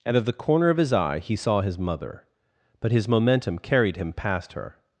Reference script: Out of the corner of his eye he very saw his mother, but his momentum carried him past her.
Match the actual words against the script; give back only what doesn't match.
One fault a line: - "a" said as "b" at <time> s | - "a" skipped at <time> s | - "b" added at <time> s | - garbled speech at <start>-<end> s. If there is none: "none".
- "very" skipped at 1.4 s